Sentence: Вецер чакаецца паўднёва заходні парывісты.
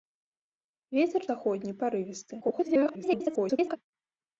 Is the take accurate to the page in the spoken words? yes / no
no